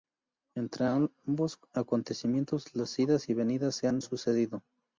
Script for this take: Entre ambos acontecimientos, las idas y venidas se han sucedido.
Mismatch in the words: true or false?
false